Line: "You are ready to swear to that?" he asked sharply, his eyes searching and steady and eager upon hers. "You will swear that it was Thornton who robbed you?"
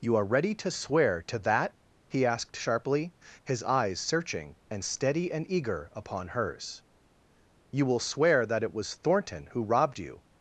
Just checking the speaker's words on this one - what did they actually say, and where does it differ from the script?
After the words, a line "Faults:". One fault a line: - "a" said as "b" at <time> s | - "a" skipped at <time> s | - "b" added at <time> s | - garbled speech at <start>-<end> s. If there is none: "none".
"You are ready to swear to that?" he asked sharply, his eyes searching and steady and eager upon hers. "You will swear that it was Thornton who robbed you?"
Faults:
none